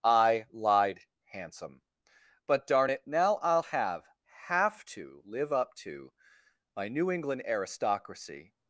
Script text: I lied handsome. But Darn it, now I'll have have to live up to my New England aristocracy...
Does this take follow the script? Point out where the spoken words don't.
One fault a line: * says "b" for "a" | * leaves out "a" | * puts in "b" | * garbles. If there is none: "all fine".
all fine